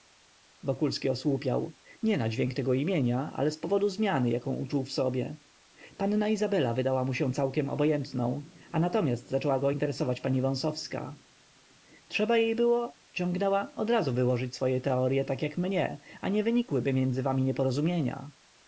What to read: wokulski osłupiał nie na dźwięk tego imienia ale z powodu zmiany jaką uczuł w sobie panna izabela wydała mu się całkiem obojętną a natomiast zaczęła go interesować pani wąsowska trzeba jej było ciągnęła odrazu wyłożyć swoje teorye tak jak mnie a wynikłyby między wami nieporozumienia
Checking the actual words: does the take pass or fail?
fail